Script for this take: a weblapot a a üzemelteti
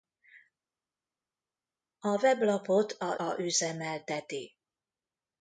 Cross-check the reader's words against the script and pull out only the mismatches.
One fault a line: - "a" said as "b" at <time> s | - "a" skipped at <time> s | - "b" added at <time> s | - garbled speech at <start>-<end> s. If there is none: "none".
none